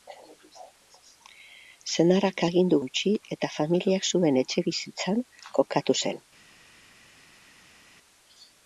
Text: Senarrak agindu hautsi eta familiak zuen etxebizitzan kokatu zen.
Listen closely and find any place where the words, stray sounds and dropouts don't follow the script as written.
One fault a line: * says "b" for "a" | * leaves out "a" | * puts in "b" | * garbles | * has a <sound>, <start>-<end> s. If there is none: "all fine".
all fine